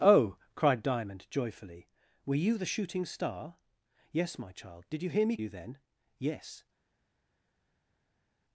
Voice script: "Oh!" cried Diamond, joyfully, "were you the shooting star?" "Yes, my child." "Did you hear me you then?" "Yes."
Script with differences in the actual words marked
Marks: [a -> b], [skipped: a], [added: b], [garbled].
"Oh!" cried Diamond, joyfully, "were you the shooting star?" "Yes, my child." "Did you hear me you then?" "Yes."